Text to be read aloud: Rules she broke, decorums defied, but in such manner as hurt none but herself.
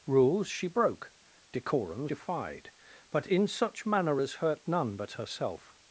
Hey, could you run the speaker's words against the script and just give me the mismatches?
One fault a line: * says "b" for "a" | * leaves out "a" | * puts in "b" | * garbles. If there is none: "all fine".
all fine